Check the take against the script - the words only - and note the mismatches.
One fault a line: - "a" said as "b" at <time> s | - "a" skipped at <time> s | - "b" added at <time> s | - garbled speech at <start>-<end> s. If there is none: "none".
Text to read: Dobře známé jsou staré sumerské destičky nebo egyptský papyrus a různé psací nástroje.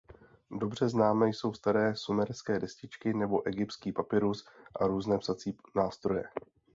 none